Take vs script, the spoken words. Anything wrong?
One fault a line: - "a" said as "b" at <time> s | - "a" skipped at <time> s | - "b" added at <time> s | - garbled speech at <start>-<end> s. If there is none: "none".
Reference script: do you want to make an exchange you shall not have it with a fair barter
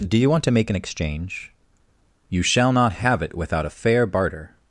- "with" said as "without" at 3.4 s